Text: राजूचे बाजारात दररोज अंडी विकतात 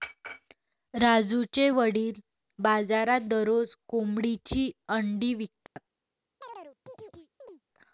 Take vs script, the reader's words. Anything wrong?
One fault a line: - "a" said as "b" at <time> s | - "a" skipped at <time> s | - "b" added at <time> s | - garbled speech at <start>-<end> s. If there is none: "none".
- "वडील" added at 1.7 s
- "कोंबडीची" added at 3.9 s